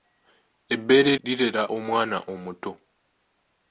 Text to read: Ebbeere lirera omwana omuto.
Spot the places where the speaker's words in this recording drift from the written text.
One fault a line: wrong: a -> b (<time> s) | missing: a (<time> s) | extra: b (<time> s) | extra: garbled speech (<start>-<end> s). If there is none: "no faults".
no faults